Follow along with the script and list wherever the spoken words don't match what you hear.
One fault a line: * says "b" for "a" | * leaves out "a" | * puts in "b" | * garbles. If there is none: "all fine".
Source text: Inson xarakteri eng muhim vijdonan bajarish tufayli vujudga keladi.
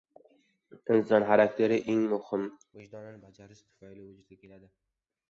all fine